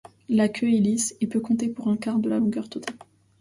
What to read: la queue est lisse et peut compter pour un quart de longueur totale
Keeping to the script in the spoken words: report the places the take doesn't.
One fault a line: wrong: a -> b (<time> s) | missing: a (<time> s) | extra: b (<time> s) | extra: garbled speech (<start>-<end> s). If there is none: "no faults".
extra: la (2.3 s)